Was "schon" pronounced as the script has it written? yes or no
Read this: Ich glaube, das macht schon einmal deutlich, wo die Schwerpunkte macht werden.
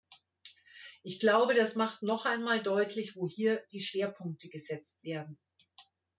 no